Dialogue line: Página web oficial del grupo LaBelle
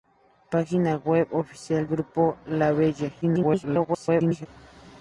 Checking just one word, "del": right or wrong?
wrong